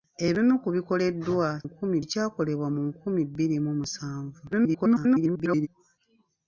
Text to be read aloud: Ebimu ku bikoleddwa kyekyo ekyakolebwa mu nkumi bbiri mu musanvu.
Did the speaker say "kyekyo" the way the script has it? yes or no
no